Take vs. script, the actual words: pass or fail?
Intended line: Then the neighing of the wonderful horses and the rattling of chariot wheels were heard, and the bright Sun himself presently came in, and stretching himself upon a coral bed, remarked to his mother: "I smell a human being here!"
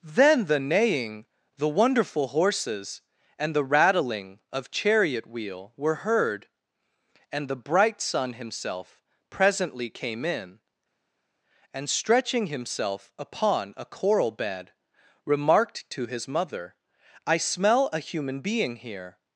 fail